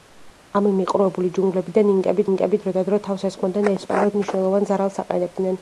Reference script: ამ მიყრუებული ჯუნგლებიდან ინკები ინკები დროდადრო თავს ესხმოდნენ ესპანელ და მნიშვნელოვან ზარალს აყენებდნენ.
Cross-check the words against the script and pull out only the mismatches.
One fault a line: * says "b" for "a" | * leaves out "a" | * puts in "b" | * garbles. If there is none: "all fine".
all fine